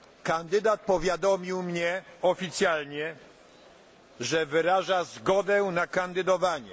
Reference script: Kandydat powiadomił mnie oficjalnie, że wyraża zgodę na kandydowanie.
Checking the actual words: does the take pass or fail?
pass